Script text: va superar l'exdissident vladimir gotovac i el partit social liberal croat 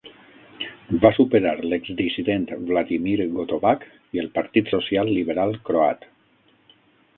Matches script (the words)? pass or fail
pass